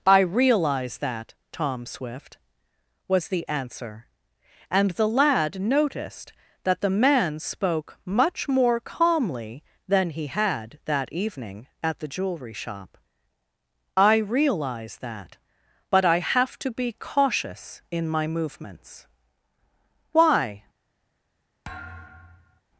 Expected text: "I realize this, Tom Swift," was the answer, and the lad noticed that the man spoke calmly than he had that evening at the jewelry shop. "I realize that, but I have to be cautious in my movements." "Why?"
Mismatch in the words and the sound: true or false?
true